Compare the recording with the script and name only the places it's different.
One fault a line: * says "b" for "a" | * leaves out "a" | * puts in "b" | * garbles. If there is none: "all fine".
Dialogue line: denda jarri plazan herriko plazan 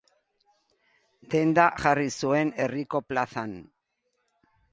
* says "zuen" for "plazan"